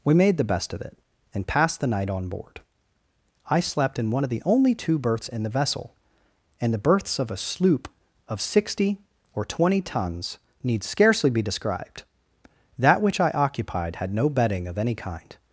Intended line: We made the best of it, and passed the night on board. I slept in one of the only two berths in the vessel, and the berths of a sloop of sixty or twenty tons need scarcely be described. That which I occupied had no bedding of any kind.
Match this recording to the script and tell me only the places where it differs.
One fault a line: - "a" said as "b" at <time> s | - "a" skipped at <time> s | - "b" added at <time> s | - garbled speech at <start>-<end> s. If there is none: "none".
none